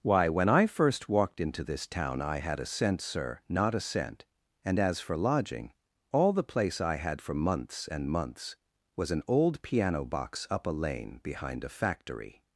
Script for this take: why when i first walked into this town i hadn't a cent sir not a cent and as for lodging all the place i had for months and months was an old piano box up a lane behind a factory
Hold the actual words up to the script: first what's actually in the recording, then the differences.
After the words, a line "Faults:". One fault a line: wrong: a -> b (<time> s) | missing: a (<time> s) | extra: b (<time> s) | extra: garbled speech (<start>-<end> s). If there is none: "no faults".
why when i first walked into this town i had a cent sir not a cent and as for lodging all the place i had for months and months was an old piano box up a lane behind a factory
Faults:
wrong: hadn't -> had (2.4 s)